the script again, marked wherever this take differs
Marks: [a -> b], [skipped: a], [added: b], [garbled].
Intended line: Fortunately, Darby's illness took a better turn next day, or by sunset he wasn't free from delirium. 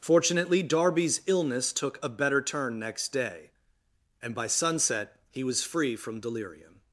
Fortunately, Darby's illness took a better turn next day, [or -> and] by sunset he [wasn't -> was] free from delirium.